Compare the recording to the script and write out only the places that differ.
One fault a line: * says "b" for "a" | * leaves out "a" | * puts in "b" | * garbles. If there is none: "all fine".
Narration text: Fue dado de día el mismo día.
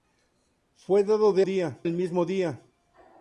all fine